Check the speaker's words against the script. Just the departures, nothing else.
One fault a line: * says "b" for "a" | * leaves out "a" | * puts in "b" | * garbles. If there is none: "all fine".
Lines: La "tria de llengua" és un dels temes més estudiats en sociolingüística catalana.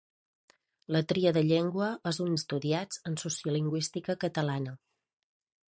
* leaves out "dels temes més"